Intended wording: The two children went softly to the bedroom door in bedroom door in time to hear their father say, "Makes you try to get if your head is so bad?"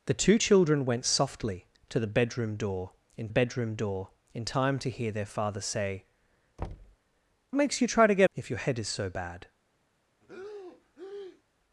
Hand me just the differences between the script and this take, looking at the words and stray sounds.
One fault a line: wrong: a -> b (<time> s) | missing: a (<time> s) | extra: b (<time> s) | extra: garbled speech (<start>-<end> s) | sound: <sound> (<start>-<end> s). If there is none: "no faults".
sound: thud (6.6-7.0 s)
sound: breath (10.2-11.4 s)